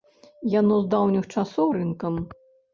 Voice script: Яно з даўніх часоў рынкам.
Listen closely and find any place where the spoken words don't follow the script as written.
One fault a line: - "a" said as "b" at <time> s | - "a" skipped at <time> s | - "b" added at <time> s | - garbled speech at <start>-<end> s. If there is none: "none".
none